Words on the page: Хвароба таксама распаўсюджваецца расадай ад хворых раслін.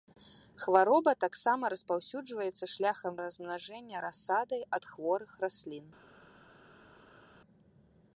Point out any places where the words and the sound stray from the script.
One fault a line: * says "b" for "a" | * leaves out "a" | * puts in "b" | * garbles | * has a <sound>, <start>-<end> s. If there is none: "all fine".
* puts in "шляхам размнажэння"